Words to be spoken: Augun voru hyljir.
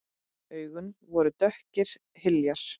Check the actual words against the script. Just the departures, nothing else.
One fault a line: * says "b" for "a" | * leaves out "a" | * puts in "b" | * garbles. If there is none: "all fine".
* puts in "dökkir"